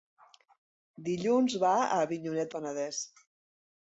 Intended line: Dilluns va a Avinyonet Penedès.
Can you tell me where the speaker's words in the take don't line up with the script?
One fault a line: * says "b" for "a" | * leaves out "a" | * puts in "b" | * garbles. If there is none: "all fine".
all fine